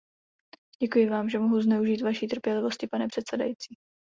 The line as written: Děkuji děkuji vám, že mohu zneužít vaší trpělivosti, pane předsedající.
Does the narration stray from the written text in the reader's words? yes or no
yes